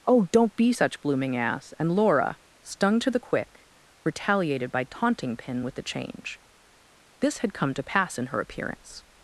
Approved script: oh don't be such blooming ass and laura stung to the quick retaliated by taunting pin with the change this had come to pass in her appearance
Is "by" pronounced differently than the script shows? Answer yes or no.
no